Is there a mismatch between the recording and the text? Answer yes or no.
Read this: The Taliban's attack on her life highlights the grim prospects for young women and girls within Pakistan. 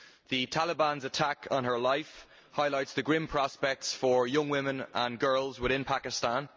no